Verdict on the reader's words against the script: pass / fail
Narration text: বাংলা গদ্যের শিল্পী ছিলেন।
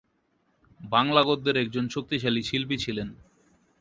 fail